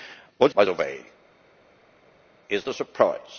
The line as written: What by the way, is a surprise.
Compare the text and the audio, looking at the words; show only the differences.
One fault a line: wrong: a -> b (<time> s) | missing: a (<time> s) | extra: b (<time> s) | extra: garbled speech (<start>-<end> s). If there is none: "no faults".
no faults